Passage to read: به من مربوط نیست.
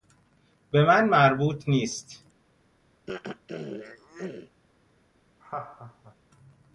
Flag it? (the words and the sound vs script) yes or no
yes